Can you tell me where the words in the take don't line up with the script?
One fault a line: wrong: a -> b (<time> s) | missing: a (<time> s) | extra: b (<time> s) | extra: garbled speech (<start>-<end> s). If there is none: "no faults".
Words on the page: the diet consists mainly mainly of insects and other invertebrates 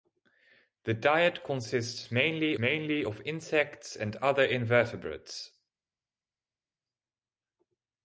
no faults